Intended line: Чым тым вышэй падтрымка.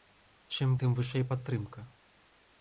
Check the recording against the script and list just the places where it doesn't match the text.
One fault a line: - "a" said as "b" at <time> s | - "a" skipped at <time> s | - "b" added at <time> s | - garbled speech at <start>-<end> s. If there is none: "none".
none